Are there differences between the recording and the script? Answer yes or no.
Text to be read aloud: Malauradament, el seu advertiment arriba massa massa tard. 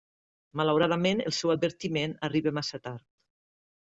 yes